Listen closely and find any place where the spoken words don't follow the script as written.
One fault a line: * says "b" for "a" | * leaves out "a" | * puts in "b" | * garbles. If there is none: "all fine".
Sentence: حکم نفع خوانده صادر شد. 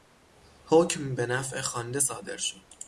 * puts in "به"